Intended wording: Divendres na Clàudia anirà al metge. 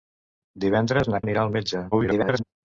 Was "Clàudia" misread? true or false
true